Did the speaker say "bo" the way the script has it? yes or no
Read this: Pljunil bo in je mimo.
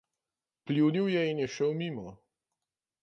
no